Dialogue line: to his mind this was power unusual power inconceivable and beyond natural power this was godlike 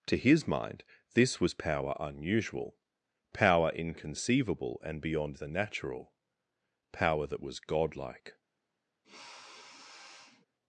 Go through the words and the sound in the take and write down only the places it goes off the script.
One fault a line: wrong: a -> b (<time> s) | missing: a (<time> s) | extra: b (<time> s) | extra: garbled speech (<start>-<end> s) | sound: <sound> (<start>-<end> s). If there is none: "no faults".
extra: the (5.3 s)
wrong: this -> that (7.3 s)
sound: sniff (9.0-10.5 s)